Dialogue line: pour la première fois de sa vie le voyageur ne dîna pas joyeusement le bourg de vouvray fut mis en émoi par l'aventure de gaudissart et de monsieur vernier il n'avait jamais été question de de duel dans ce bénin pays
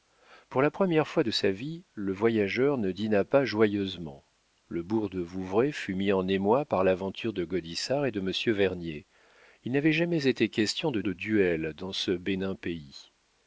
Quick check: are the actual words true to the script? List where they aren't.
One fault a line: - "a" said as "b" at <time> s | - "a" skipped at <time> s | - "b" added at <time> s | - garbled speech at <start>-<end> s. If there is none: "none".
none